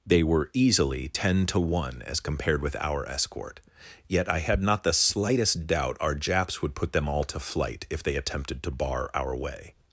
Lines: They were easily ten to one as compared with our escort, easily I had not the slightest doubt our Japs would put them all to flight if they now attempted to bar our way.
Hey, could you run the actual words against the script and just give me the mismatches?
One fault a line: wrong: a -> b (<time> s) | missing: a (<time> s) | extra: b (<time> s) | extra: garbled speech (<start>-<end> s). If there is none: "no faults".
wrong: easily -> yet (4.1 s)
missing: now (8.1 s)